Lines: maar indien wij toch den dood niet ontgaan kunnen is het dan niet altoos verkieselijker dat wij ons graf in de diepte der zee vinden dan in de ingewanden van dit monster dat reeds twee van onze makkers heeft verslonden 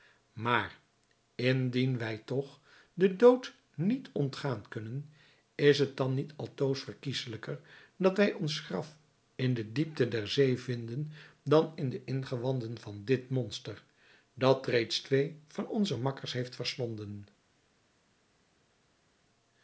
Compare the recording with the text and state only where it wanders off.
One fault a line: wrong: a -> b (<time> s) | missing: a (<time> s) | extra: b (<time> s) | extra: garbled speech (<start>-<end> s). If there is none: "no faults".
no faults